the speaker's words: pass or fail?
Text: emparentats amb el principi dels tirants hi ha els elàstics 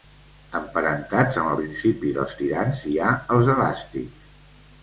pass